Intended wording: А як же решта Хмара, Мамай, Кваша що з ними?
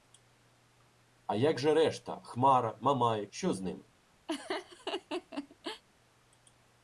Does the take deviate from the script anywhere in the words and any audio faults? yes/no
yes